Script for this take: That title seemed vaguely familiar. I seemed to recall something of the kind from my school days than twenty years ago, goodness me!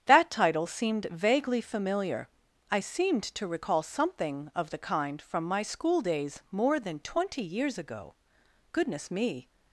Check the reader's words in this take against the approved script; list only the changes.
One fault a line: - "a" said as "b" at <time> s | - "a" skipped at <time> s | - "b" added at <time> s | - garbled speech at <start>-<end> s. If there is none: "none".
- "more" added at 6.5 s